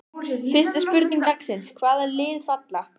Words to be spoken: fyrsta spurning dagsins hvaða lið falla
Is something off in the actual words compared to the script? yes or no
no